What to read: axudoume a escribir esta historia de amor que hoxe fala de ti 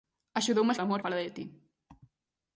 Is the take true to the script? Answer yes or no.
no